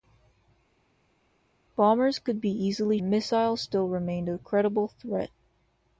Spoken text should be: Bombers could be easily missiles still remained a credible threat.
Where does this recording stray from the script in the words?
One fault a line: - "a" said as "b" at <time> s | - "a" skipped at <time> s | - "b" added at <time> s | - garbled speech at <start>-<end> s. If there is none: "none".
none